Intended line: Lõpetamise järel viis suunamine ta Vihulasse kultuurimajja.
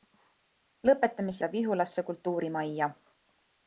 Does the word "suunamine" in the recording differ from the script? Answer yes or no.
yes